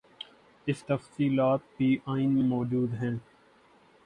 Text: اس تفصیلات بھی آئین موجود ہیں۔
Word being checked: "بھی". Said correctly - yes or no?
yes